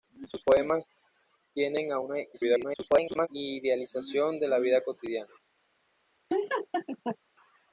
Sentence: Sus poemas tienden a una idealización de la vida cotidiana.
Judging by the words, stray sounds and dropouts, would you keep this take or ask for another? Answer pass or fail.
fail